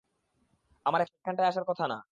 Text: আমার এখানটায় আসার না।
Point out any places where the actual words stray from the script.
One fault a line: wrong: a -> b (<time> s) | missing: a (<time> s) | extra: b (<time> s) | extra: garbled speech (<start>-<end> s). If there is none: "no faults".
extra: কথা (1.7 s)